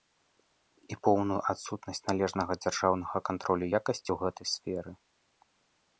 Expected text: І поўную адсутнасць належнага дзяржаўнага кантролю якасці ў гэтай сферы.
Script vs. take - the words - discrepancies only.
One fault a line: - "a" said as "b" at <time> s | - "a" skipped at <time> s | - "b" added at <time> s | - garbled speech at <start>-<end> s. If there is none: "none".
none